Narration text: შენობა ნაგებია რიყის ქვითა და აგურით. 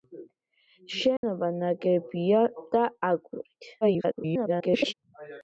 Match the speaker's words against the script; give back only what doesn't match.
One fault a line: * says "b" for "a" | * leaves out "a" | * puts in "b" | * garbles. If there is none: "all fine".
* leaves out "რიყის ქვითა"
* garbles